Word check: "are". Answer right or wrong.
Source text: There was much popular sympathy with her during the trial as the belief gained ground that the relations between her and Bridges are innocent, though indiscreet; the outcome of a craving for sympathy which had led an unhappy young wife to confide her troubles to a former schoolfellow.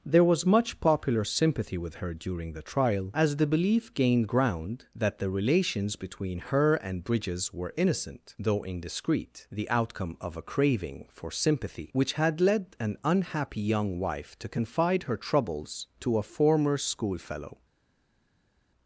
wrong